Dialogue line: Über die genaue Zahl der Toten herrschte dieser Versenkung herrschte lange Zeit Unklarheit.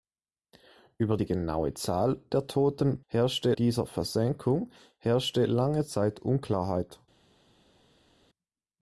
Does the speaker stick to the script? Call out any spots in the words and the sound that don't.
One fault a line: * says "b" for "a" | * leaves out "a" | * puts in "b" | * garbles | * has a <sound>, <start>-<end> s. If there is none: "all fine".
all fine